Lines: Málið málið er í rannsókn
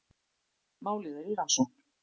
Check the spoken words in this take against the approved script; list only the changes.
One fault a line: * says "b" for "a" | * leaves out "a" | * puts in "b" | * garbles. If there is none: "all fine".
* leaves out "málið"